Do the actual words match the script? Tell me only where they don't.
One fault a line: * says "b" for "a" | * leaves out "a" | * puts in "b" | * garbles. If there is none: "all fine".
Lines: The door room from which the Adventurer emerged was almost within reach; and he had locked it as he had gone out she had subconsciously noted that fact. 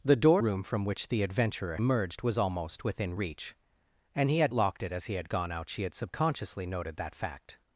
all fine